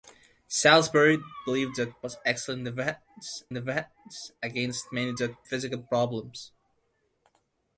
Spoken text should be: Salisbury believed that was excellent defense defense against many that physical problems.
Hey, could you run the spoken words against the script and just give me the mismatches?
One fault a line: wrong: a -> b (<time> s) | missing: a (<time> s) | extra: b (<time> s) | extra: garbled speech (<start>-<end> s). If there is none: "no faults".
no faults